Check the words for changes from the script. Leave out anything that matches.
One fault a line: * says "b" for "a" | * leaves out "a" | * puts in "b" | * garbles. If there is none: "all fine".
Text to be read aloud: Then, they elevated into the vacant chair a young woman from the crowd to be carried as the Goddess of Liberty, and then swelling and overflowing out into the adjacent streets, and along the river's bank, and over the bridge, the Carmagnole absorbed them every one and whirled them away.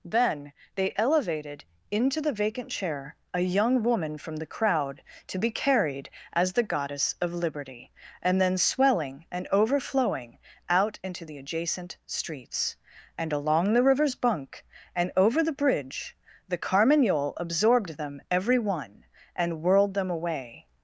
* says "bunk" for "bank"